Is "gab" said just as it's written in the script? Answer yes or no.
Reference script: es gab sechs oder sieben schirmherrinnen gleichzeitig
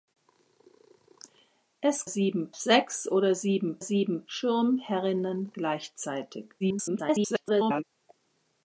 no